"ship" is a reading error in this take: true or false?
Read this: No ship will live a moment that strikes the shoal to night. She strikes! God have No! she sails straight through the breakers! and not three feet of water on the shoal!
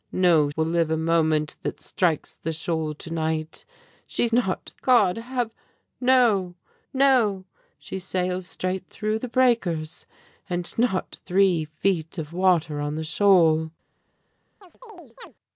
true